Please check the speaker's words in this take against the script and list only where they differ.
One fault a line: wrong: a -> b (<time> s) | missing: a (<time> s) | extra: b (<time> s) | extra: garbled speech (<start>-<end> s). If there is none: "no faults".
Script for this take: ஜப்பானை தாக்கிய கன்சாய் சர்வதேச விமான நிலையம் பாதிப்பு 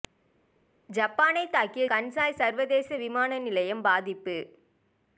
no faults